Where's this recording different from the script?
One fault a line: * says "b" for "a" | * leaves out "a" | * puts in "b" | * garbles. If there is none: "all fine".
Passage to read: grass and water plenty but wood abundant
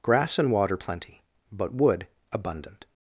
all fine